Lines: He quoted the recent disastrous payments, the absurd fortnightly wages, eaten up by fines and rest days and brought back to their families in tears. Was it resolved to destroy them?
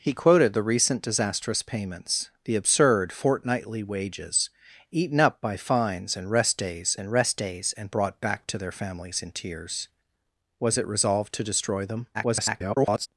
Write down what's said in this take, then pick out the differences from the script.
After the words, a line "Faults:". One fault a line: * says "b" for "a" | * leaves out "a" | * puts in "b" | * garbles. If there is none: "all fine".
He quoted the recent disastrous payments, the absurd fortnightly wages, eaten up by fines and rest days and rest days and brought back to their families in tears. Was it resolved to destroy them? [garbled]
Faults:
* puts in "rest days and"
* garbles